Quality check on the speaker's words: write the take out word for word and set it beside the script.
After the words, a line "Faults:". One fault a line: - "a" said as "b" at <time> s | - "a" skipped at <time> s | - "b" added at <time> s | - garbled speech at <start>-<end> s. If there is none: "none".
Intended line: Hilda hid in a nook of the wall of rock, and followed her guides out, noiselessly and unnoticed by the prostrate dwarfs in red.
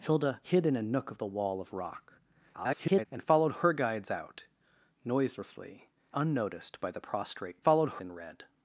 Hilda hid in a nook of the wall of rock, [garbled] and followed her guides out, noiselessly unnoticed by the prostrate followed in red.
Faults:
- garbled speech at 2.5-3.1 s
- "and" skipped at 5.9 s
- "dwarfs" said as "followed" at 7.6 s